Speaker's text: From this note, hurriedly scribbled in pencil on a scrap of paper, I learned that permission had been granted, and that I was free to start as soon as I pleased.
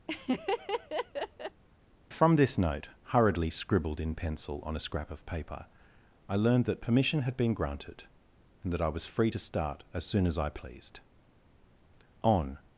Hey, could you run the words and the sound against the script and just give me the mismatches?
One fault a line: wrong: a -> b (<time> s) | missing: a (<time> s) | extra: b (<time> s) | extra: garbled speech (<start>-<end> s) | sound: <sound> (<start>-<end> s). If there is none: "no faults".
sound: laugh (0.1-1.6 s)
extra: On (12.2 s)